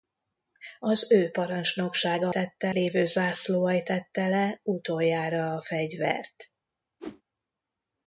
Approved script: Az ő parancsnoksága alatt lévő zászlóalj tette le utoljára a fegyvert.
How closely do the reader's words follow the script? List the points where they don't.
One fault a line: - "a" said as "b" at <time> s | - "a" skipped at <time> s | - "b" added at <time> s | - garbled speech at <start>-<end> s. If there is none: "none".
- "alatt" said as "tette" at 2.3 s